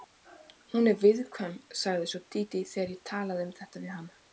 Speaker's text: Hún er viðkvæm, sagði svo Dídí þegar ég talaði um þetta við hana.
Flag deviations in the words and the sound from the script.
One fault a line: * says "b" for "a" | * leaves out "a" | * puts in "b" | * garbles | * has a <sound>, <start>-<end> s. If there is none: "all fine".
all fine